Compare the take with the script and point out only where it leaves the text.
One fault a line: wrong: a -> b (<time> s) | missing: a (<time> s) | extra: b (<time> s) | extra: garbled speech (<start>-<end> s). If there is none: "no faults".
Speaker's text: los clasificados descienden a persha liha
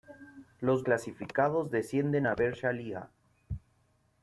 no faults